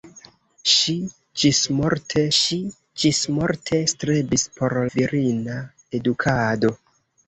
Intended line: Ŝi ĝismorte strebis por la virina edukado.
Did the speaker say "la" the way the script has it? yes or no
no